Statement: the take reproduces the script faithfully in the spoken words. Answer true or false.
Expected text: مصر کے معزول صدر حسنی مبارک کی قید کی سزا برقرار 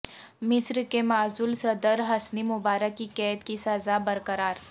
true